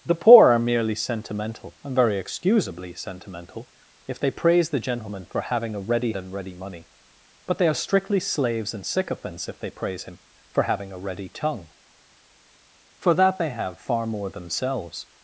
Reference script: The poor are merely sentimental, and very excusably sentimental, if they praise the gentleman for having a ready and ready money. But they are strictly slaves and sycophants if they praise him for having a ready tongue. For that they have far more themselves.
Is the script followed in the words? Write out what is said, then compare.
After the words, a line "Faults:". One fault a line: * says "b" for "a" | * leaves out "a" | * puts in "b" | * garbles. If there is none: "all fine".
The poor are merely sentimental, and very excusably sentimental, if they praise the gentleman for having a ready and ready money. But they are strictly slaves and sycophants if they praise him for having a ready tongue. For that they have far more themselves.
Faults:
all fine